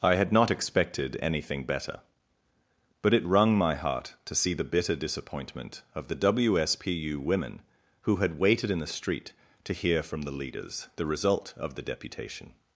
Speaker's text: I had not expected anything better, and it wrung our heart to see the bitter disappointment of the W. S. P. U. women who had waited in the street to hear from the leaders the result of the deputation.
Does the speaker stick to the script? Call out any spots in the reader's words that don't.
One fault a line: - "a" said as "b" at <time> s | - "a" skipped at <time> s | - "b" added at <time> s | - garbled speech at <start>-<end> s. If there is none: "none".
- "and" said as "but" at 3.0 s
- "our" said as "my" at 3.5 s